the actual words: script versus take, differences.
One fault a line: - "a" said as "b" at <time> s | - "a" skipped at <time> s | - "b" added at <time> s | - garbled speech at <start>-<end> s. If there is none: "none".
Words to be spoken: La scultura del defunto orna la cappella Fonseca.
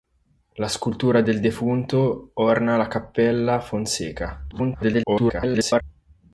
- garbled speech at 4.5-5.8 s